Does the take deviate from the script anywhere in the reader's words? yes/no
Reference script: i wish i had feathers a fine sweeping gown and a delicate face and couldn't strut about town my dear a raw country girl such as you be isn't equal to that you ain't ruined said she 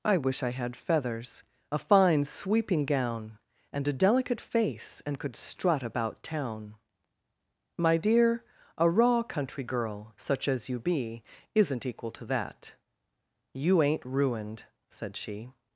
yes